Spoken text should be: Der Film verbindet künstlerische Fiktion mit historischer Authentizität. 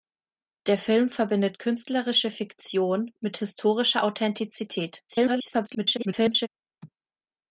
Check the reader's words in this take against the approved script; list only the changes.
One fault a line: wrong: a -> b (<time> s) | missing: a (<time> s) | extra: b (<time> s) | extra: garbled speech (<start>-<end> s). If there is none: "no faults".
extra: garbled speech (5.1-6.5 s)